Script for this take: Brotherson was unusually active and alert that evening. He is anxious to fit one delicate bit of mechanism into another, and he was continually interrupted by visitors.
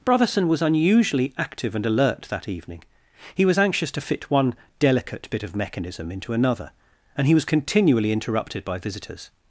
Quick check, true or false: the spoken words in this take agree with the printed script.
false